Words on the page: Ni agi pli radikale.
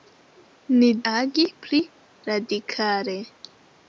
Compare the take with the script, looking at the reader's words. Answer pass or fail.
pass